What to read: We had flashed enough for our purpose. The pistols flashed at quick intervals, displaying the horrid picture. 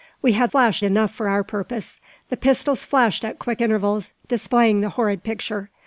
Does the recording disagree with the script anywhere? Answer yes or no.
no